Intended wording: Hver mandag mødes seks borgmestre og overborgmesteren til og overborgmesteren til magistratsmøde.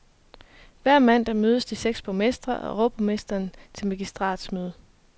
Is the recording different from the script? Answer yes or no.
yes